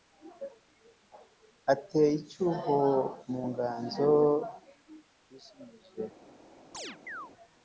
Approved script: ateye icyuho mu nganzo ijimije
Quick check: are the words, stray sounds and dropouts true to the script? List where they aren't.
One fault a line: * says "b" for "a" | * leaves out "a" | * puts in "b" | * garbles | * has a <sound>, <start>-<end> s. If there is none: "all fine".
* has a chirp, 6.7-7.3 s